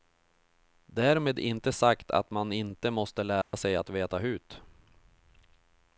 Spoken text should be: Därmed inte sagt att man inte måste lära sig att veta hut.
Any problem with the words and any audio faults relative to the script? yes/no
yes